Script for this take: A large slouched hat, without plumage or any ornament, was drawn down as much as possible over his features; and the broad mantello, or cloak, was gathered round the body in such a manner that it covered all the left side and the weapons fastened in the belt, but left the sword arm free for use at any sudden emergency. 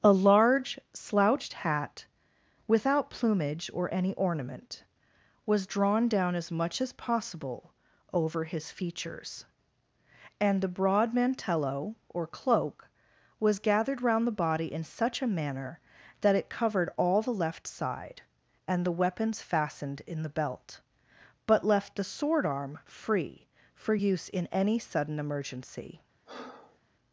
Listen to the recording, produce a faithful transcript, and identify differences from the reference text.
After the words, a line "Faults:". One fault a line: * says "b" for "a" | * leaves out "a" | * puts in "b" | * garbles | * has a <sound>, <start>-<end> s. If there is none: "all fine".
A large slouched hat, without plumage or any ornament, was drawn down as much as possible over his features; and the broad mantello, or cloak, was gathered round the body in such a manner that it covered all the left side and the weapons fastened in the belt, but left the sword arm free for use in any sudden emergency.
Faults:
* says "in" for "at"
* has a breath, 26.3-26.8 s